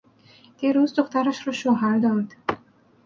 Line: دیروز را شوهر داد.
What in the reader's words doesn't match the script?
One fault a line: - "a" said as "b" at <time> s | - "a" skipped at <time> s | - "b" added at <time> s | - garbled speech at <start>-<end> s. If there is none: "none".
- "دخترش" added at 0.9 s